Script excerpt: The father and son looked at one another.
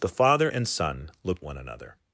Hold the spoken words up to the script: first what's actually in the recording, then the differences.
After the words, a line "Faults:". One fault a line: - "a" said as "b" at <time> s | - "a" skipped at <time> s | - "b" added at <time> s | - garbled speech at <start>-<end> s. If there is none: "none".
The father and son looked one another.
Faults:
- "at" skipped at 1.4 s